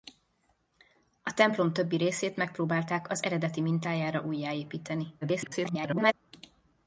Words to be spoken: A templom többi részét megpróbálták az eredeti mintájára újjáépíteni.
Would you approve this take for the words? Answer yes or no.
no